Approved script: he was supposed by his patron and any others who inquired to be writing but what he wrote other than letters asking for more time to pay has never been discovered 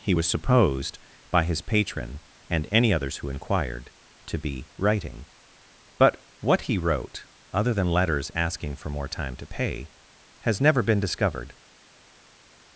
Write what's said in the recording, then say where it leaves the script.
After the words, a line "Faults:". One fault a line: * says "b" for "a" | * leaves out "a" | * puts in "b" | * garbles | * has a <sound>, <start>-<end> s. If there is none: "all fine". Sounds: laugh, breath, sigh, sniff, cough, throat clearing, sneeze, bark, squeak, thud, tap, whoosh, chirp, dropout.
he was supposed by his patron and any others who inquired to be writing but what he wrote other than letters asking for more time to pay has never been discovered
Faults:
all fine